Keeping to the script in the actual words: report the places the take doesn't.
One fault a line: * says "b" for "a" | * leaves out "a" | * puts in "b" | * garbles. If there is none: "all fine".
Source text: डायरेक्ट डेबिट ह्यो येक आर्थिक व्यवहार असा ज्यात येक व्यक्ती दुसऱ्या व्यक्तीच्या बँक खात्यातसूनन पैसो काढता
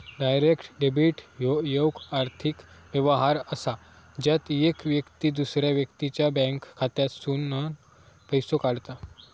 all fine